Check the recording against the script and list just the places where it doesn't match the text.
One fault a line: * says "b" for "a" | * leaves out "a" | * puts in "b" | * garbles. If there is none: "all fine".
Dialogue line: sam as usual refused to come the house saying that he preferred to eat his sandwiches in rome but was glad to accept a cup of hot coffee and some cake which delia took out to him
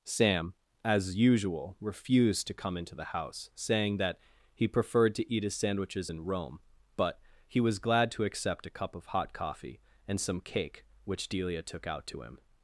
* puts in "into"
* puts in "he"